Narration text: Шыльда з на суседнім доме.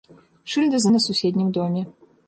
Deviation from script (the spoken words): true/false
false